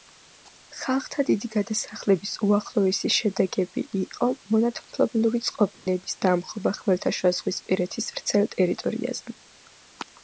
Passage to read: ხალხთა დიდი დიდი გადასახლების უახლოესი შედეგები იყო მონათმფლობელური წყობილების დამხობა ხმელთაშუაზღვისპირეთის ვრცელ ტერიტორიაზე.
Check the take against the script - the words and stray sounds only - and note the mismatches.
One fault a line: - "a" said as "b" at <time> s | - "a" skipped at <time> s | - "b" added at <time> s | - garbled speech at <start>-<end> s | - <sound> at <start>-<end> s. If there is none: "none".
- "დიდი" skipped at 1.5 s
- dropout at 5.7-5.9 s